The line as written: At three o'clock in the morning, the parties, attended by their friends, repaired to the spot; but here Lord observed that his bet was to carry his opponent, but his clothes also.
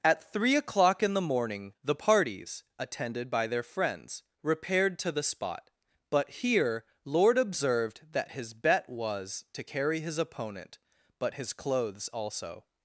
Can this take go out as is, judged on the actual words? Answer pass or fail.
pass